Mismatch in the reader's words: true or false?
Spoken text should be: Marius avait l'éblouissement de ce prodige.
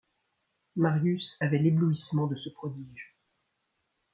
false